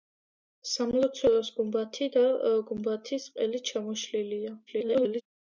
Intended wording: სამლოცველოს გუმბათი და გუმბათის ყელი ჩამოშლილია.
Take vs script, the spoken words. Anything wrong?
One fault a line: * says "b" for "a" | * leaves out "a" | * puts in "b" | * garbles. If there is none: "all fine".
* garbles